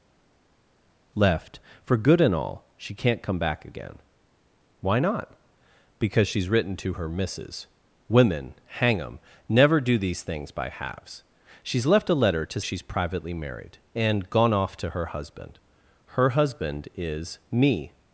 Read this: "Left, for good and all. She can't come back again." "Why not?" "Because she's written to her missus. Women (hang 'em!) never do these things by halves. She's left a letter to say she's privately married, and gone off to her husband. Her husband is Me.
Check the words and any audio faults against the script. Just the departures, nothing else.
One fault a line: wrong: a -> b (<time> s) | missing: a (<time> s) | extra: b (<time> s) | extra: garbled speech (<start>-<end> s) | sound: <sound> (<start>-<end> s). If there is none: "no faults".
missing: say (12.6 s)